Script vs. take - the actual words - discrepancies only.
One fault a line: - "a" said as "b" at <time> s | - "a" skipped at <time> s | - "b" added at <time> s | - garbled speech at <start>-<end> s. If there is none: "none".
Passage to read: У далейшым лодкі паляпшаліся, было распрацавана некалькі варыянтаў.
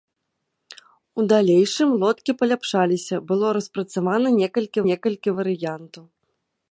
- "некалькі" added at 4.9 s